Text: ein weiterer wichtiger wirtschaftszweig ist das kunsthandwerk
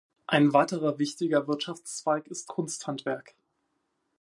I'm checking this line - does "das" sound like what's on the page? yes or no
no